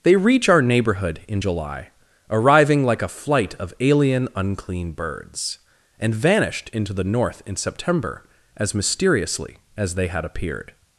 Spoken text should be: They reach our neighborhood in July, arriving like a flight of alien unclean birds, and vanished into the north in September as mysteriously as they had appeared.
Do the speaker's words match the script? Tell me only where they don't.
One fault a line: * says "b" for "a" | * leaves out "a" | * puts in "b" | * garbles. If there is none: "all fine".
all fine